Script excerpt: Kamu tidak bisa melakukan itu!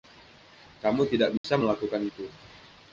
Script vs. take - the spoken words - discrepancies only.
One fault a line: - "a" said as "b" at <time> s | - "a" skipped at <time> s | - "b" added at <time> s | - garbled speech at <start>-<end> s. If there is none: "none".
none